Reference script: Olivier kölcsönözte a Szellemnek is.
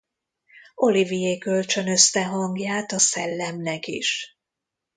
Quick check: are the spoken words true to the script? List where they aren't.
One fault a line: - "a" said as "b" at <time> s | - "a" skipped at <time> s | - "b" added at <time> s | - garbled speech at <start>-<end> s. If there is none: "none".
- "hangját" added at 2.2 s